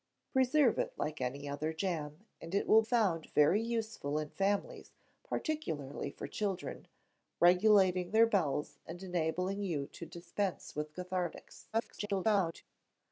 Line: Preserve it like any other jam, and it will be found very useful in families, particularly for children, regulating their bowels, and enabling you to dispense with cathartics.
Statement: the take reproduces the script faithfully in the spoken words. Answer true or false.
false